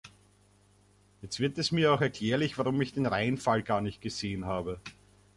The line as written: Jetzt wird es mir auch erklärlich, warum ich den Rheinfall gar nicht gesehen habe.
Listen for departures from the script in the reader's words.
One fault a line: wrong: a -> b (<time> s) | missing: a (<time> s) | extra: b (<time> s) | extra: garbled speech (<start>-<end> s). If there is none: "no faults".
no faults